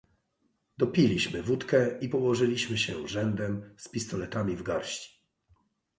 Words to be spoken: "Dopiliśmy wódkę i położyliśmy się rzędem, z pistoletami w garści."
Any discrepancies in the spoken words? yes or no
no